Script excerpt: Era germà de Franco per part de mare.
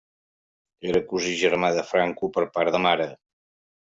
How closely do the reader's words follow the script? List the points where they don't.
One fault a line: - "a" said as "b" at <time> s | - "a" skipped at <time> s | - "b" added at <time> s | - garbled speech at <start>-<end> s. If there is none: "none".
- "cosí" added at 1.1 s